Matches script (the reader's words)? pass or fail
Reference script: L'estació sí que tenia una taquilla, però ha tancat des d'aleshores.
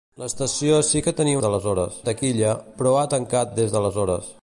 fail